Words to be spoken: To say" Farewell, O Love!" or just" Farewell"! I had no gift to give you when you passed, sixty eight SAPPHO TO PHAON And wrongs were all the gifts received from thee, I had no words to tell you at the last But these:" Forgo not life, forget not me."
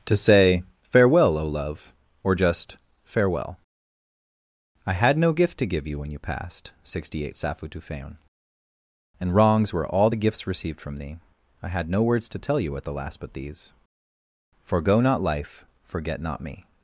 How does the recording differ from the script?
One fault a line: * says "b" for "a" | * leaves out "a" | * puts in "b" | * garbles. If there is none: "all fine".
all fine